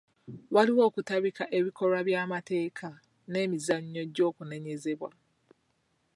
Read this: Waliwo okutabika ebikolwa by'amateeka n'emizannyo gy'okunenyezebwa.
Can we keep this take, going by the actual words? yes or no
yes